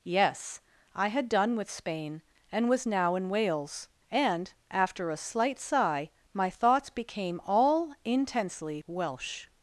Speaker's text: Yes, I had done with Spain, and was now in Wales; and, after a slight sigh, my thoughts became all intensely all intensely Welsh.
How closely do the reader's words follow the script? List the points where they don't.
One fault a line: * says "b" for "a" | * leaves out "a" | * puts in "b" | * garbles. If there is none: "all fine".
* leaves out "all intensely"